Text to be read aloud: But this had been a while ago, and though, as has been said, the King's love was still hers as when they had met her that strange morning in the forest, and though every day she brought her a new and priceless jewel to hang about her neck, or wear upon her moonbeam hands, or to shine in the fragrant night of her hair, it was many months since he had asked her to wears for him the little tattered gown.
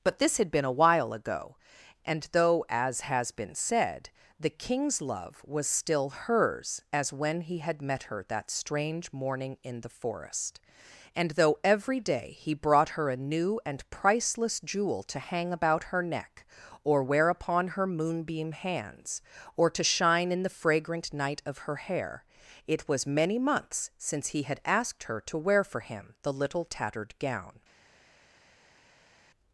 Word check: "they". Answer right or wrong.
wrong